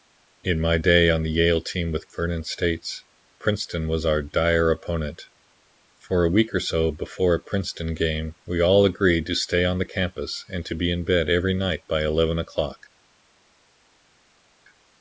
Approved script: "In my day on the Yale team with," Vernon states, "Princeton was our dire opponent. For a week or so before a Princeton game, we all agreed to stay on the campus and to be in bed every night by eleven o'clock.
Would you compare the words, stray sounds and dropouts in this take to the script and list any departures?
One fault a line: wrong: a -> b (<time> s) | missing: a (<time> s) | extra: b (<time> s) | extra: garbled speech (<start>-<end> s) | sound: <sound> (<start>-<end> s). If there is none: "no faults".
no faults